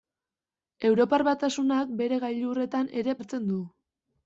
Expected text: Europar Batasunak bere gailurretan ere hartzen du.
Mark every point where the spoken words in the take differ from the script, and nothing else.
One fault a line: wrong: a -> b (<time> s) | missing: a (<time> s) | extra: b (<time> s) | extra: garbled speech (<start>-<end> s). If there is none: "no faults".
no faults